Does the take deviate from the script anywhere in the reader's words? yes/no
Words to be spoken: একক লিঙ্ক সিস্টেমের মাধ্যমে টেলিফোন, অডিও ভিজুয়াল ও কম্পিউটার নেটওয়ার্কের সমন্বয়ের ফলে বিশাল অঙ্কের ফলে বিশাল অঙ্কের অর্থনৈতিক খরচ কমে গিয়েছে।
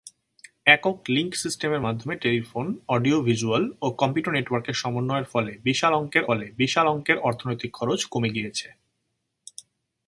no